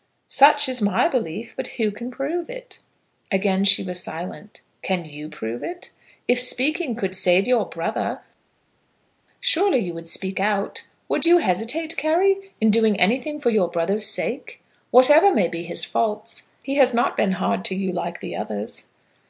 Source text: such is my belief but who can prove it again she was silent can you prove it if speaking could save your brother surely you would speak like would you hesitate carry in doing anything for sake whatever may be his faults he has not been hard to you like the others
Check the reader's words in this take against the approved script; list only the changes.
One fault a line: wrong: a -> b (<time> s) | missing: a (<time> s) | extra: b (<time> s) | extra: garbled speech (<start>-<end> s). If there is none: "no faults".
wrong: like -> out (10.4 s)
extra: your brother's (13.5 s)